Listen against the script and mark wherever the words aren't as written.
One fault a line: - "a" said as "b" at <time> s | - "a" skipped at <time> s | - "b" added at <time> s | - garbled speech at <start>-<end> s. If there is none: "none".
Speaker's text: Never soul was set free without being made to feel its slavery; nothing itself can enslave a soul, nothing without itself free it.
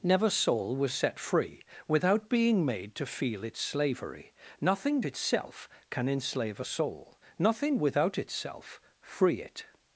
none